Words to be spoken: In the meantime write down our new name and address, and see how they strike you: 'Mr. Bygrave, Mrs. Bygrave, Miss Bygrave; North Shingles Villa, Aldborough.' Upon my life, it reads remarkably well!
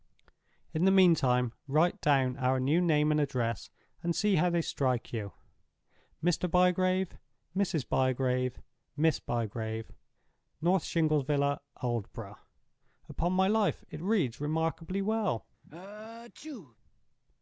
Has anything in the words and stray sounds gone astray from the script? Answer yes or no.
yes